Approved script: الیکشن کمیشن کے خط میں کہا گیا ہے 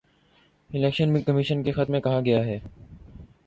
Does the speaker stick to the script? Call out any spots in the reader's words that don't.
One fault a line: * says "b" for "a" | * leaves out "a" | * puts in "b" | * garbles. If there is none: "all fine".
all fine